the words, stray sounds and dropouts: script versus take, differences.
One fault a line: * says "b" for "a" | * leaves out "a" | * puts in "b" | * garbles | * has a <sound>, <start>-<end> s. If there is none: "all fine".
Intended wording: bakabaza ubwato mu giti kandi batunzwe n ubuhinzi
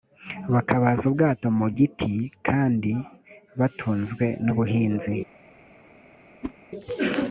* has a whoosh, 6.4-6.5 s